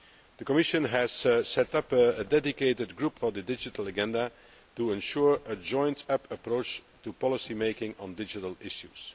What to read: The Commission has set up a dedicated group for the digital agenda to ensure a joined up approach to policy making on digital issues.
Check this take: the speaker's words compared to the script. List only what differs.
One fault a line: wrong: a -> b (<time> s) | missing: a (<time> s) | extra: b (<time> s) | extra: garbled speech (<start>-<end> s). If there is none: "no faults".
no faults